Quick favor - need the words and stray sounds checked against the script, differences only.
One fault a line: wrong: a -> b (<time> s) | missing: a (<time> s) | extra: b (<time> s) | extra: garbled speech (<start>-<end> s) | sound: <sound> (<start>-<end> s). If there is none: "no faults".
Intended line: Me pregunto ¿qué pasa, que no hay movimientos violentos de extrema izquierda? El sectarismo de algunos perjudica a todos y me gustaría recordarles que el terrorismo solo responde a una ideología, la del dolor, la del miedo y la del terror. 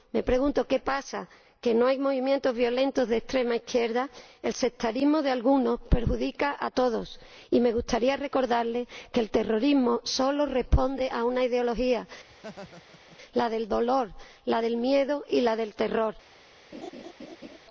sound: laugh (12.3-13.2 s)
sound: laugh (16.7-17.6 s)